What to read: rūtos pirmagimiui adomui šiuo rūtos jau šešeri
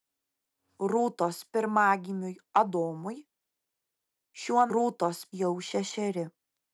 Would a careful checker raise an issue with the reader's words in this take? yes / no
no